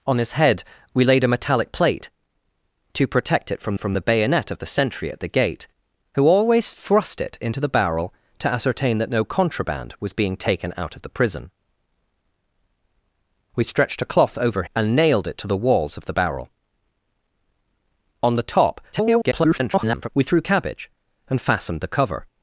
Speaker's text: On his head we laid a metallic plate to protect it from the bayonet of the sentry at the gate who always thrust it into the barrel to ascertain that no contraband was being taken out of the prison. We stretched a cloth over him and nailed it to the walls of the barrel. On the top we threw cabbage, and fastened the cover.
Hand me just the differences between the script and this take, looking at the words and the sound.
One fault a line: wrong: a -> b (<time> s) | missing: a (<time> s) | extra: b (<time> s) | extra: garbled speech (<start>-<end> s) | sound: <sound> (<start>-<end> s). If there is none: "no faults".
extra: from (3.8 s)
missing: him (14.6 s)
extra: garbled speech (18.9-20.1 s)